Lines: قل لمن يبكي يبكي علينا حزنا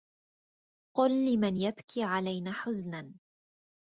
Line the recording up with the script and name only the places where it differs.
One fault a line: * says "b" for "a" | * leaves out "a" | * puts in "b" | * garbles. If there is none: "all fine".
* leaves out "يبكي"